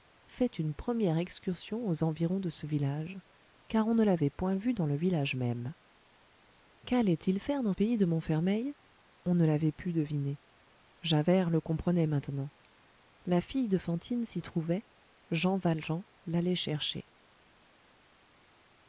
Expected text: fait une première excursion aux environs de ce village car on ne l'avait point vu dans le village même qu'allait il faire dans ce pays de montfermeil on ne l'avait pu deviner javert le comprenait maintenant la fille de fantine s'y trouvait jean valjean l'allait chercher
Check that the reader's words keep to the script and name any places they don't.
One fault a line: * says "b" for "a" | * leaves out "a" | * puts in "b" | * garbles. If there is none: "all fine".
* leaves out "ce"